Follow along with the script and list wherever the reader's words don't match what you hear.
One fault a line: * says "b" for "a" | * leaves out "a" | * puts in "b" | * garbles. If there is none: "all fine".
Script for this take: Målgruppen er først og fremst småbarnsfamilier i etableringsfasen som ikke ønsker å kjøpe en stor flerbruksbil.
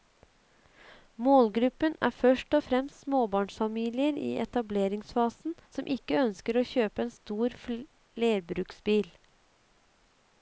all fine